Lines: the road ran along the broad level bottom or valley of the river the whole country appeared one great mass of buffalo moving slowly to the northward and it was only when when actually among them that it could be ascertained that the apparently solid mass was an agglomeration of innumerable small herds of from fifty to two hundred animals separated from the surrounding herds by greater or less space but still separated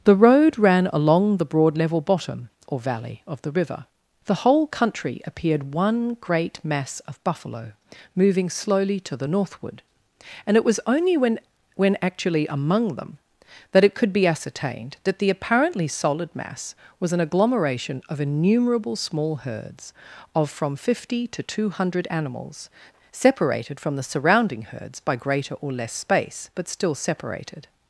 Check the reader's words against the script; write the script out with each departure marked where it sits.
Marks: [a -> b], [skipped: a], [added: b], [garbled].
the road ran along the broad level bottom or valley of the river the whole country appeared one great mass of buffalo moving slowly to the northward and it was only when when actually among them that it could be ascertained that the apparently solid mass was an agglomeration of innumerable small herds of from fifty to two hundred animals separated from the surrounding herds by greater or less space but still separated